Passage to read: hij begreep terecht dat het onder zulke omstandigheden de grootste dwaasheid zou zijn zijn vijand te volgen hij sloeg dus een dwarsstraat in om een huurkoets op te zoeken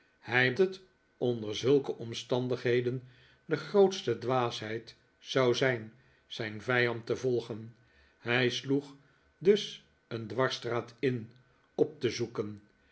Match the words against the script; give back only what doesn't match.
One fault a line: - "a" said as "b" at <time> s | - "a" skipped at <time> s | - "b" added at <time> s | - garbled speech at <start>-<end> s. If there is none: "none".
- "begreep terecht dat" skipped at 0.5 s
- "om een huurkoets" skipped at 11.3 s